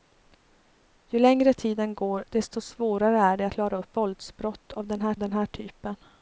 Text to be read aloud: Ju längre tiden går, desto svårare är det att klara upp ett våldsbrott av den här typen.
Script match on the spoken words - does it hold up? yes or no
no